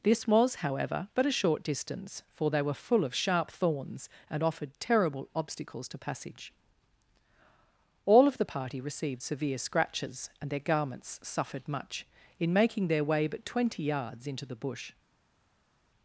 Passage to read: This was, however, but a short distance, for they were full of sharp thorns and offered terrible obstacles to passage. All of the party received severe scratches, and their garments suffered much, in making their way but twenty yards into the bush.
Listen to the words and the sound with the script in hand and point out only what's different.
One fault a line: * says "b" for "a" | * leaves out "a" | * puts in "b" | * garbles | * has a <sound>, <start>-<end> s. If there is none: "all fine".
all fine